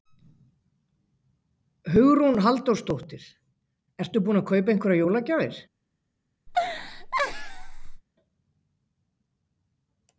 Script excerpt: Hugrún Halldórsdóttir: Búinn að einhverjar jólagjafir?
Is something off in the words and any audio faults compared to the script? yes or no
yes